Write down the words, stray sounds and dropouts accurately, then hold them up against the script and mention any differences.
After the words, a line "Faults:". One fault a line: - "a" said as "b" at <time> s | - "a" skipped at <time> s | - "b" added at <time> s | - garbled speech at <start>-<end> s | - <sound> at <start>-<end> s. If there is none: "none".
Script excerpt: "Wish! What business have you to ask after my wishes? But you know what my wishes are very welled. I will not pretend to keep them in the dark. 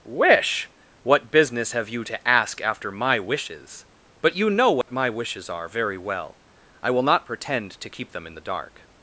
"Wish! What business have you to ask after my wishes? But you know what my wishes are very well. I will not pretend to keep them in the dark.
Faults:
- dropout at 4.8-4.9 s
- "welled" said as "well" at 6.0 s